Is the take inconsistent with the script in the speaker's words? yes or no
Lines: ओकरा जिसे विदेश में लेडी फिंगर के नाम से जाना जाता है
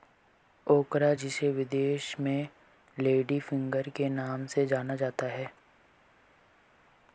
no